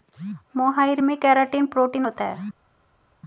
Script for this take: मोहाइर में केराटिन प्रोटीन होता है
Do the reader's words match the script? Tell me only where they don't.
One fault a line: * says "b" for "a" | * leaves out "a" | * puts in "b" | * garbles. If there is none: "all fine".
all fine